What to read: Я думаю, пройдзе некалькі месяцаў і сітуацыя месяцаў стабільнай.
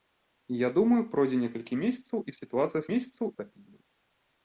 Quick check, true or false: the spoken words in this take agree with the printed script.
true